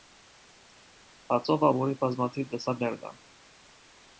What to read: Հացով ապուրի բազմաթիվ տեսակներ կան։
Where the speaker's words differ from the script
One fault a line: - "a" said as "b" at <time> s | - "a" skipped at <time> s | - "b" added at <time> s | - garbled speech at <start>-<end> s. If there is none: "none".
none